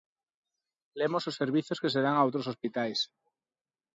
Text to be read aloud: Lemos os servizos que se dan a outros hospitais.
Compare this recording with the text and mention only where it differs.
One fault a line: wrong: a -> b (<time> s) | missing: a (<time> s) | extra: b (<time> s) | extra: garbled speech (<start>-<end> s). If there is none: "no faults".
no faults